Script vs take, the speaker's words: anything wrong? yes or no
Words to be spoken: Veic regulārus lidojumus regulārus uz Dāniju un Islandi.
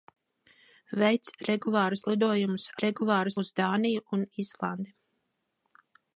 no